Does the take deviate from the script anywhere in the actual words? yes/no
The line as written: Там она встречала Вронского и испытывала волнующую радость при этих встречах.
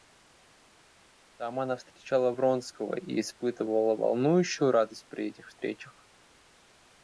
no